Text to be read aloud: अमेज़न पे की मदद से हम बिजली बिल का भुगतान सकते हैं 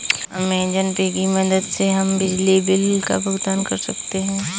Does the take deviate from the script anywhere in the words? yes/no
yes